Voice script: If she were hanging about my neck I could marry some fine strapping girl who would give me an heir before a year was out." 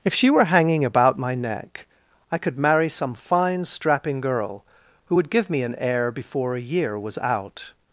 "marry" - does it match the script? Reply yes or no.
yes